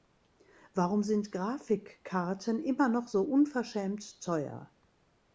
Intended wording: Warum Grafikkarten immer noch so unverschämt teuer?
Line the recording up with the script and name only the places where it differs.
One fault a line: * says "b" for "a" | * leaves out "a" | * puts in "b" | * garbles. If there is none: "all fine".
* puts in "sind"